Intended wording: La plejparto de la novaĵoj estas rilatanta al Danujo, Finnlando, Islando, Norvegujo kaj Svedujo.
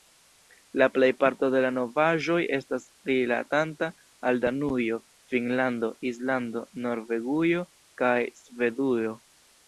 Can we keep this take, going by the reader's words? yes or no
yes